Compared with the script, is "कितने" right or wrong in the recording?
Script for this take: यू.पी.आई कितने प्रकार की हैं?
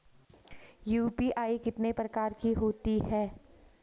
right